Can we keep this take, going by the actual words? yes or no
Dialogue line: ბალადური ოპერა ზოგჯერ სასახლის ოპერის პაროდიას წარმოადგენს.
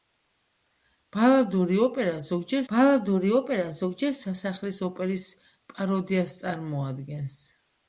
no